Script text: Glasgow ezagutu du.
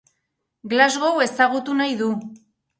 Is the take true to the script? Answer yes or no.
no